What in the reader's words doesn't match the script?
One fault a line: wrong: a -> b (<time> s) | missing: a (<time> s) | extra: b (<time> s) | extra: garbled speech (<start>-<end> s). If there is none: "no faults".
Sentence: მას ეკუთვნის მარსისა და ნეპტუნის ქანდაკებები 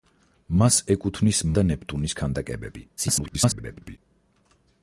missing: მარსისა (1.4 s)
extra: garbled speech (3.0-4.0 s)